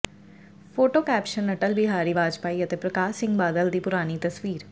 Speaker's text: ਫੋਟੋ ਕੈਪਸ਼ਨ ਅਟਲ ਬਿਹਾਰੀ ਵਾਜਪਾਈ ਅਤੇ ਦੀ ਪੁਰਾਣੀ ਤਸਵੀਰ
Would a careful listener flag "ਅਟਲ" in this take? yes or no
no